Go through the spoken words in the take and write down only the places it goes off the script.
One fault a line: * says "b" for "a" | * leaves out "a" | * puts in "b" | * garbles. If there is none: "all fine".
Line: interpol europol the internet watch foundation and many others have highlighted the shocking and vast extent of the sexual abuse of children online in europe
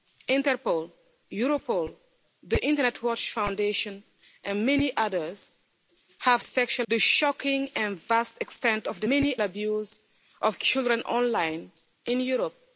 * says "sexual" for "highlighted"
* says "many" for "sexual"